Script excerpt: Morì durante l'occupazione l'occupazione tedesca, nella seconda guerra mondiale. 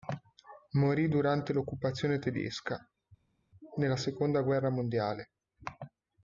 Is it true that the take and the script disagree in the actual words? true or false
true